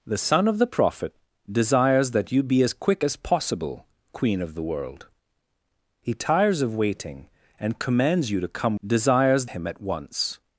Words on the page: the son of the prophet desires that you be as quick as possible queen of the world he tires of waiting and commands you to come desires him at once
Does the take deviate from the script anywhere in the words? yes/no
no